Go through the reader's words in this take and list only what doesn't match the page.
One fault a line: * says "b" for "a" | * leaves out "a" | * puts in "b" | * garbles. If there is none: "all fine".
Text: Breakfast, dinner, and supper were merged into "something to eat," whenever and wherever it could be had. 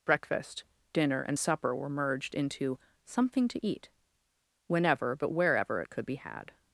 * says "but" for "and"